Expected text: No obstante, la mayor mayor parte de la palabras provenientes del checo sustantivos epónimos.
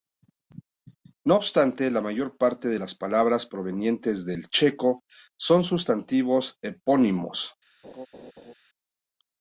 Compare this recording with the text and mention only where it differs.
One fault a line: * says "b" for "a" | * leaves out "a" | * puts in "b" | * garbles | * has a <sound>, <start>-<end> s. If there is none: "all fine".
* leaves out "mayor"
* says "las" for "la"
* puts in "son"
* has a laugh, 7.8-8.5 s